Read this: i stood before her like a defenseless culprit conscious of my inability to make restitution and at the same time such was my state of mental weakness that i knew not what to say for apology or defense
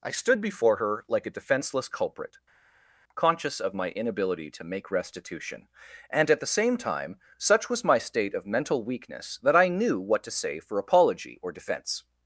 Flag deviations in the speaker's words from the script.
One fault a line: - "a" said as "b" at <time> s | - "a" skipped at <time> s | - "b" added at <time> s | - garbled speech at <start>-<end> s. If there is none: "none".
- "not" skipped at 10.0 s